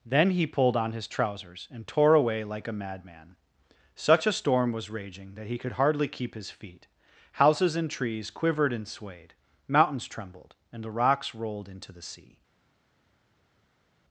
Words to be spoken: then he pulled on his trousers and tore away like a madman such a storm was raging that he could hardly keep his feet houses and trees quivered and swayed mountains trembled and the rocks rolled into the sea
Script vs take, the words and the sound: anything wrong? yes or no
no